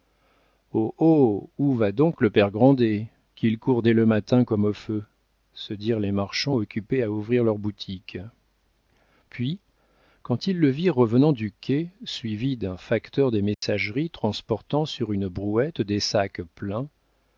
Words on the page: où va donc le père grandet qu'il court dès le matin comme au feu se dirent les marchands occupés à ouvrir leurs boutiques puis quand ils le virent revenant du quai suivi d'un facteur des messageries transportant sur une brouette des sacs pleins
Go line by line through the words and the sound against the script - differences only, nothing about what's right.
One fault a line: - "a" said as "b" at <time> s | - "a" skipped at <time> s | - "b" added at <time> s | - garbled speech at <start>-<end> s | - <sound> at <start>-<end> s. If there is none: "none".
- dropout at 13.5-13.6 s